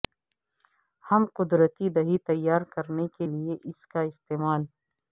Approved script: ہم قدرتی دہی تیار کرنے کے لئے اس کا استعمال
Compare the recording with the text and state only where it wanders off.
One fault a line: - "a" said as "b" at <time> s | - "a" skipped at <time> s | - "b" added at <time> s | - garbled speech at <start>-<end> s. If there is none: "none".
none